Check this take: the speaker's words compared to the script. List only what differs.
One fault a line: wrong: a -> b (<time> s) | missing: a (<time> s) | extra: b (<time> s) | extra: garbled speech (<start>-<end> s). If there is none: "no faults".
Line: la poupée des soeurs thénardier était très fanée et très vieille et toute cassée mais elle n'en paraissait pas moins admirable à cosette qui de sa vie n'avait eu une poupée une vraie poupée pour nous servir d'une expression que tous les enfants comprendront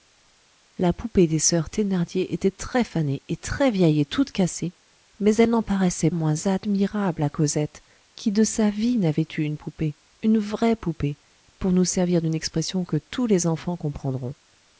missing: pas (6.1 s)